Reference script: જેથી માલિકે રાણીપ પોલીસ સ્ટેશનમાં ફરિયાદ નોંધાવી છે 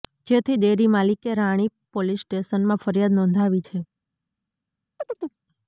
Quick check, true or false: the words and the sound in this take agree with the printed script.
false